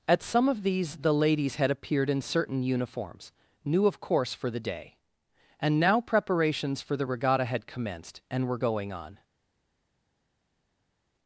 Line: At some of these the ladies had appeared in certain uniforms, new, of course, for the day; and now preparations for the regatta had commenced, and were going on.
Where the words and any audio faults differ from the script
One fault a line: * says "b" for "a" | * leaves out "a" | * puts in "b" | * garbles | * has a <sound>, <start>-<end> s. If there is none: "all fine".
all fine